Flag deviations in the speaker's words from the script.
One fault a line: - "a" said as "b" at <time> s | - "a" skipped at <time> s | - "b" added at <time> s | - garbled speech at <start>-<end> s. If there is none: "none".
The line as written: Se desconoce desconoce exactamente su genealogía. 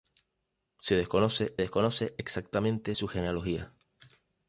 none